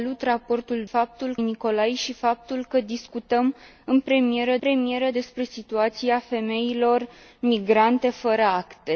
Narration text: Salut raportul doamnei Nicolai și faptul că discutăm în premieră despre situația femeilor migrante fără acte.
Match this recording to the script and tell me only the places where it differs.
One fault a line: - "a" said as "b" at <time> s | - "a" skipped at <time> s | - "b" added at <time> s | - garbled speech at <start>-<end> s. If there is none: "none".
- "doamnei" said as "faptul" at 0.8 s
- "premieră" added at 4.6 s